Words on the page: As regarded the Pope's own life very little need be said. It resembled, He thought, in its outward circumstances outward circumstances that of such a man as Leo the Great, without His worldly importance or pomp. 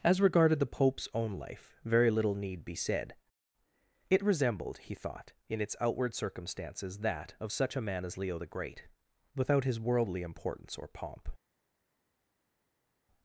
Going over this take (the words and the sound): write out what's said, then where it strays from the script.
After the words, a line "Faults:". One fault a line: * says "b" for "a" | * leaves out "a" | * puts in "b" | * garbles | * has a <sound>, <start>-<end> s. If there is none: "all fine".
As regarded the Pope's own life very little need be said. It resembled, He thought, in its outward circumstances that of such a man as Leo the Great, without His worldly importance or pomp.
Faults:
* leaves out "outward circumstances"